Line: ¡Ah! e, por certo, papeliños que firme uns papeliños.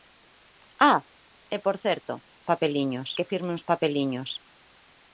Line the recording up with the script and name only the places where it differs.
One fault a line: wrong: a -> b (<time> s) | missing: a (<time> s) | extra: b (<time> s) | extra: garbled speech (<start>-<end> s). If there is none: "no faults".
no faults